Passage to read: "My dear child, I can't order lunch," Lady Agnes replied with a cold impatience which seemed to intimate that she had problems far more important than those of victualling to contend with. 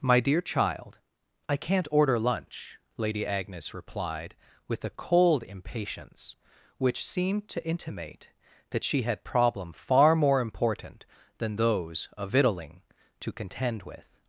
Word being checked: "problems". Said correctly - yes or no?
no